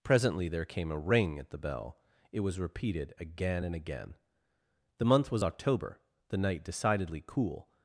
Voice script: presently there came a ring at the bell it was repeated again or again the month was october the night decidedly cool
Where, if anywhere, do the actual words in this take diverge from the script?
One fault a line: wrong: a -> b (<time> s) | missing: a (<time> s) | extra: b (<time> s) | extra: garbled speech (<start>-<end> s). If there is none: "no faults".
wrong: or -> and (3.6 s)